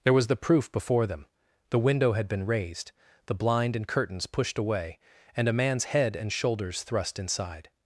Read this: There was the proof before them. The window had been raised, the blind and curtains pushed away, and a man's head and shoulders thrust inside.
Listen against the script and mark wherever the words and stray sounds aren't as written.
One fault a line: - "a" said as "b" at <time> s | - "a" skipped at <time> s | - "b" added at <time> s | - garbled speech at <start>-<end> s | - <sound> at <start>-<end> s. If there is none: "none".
none